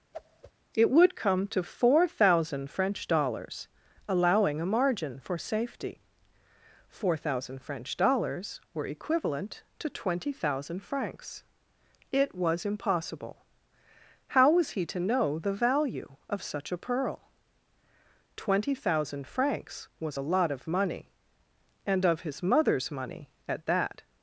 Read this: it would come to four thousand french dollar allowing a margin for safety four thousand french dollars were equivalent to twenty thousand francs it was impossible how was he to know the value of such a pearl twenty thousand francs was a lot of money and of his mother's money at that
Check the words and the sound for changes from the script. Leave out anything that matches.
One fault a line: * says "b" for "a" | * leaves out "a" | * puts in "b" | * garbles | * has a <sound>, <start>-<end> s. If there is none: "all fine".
* has a whoosh, 0.1-0.5 s
* says "dollars" for "dollar"